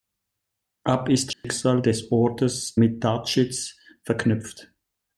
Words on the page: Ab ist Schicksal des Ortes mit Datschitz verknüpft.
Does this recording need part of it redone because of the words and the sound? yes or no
yes